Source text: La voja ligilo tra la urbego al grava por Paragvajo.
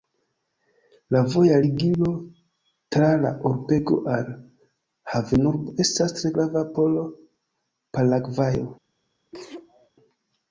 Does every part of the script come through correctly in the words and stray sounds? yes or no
no